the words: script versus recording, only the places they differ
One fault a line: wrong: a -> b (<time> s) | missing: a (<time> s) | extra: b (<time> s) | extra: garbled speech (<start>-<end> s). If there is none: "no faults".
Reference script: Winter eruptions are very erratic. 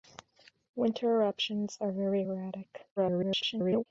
extra: garbled speech (3.0-3.9 s)